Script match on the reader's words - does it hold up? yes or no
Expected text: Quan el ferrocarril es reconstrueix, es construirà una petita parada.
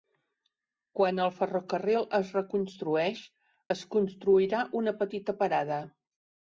yes